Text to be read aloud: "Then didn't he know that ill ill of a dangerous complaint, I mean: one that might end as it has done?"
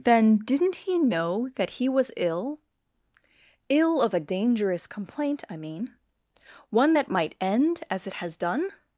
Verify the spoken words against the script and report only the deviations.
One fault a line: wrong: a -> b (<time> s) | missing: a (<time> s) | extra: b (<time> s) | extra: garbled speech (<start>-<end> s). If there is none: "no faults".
extra: he was (1.8 s)